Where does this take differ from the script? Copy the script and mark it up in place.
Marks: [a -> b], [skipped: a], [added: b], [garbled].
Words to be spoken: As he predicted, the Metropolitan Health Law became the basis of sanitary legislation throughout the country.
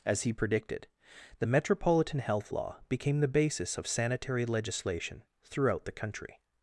As he predicted, the Metropolitan Health Law became the basis of sanitary legislation throughout the country.